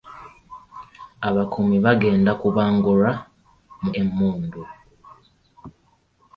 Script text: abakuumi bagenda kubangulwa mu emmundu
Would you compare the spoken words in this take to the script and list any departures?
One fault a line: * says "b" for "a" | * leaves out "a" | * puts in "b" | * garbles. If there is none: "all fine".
all fine